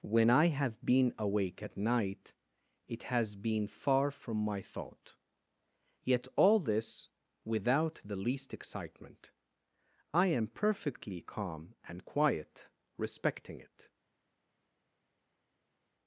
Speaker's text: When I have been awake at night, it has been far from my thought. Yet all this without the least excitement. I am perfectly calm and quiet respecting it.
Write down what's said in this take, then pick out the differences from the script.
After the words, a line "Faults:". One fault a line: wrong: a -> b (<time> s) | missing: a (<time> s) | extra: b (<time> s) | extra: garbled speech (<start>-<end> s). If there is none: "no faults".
When I have been awake at night, it has been far from my thought. Yet all this without the least excitement. I am perfectly calm and quiet respecting it.
Faults:
no faults